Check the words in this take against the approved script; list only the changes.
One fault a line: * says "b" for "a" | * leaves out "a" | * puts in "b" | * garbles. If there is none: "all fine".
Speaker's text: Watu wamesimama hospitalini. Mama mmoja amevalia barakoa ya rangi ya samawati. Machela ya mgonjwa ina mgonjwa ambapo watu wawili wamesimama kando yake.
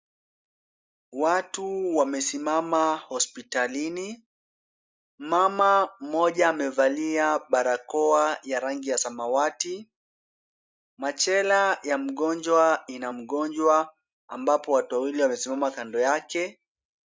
all fine